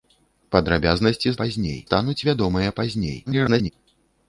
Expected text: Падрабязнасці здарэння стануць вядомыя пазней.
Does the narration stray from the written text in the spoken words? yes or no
yes